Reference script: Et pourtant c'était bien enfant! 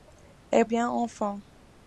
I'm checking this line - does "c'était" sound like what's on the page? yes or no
no